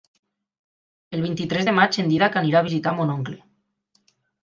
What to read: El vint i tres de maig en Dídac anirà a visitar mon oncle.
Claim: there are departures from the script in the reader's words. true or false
false